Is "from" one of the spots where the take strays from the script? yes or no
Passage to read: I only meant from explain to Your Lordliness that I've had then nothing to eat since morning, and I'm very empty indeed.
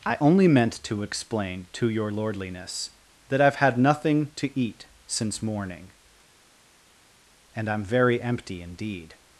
yes